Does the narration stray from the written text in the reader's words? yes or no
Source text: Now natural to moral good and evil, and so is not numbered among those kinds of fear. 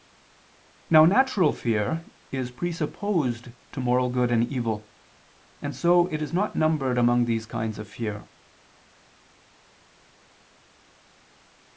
yes